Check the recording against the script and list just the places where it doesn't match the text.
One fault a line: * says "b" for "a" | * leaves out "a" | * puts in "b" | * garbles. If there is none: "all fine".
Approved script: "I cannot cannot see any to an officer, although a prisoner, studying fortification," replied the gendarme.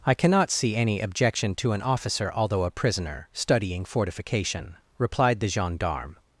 * leaves out "cannot"
* puts in "objection"